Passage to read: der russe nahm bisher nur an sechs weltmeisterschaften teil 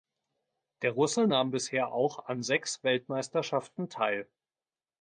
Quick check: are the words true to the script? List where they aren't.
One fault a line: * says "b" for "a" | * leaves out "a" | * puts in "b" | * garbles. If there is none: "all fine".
* says "auch" for "nur"